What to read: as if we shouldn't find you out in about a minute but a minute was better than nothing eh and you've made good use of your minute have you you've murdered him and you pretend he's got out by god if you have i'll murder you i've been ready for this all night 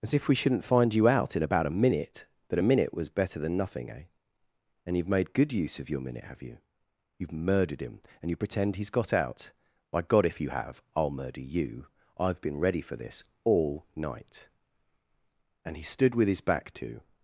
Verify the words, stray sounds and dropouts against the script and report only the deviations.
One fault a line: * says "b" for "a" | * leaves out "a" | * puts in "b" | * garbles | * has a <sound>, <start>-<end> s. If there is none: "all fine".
* puts in "and he stood with his back to"